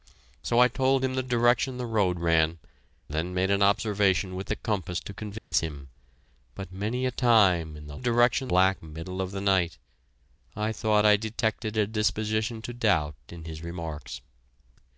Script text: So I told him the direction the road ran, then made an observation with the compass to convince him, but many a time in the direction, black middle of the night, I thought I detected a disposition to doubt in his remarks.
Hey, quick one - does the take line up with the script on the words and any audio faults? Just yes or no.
no